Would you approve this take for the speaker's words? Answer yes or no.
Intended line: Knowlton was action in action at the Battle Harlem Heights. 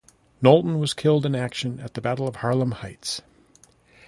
no